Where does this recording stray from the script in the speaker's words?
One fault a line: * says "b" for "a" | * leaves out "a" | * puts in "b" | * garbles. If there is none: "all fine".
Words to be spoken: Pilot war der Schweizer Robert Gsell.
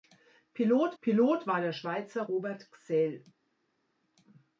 * puts in "pilot"